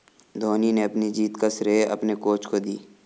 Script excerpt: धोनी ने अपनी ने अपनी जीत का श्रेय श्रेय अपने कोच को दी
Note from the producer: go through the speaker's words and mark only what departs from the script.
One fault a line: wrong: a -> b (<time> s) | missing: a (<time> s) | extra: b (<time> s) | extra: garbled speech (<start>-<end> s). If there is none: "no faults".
missing: ने अपनी (1.1 s)
missing: श्रेय (1.8 s)